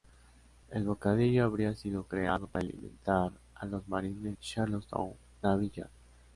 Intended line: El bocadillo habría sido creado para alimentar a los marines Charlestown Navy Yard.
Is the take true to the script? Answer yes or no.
yes